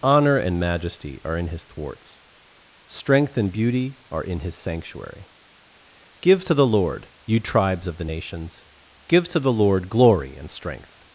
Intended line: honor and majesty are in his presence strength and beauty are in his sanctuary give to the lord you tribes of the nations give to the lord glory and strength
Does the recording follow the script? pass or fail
fail